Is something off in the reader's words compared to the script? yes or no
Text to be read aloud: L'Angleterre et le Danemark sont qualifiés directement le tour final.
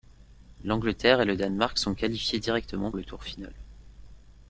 no